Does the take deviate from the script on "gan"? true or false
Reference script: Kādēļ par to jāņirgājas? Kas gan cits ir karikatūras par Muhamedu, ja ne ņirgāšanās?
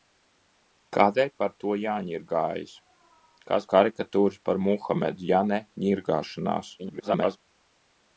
true